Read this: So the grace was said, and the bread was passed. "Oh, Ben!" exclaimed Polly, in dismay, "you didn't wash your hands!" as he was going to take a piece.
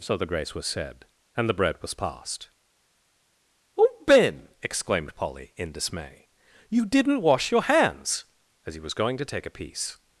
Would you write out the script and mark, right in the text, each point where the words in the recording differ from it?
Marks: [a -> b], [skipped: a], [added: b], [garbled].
So the grace was said, and the bread was passed. "Oh, Ben!" exclaimed Polly, in dismay, "you didn't wash your hands!" as he was going to take a piece.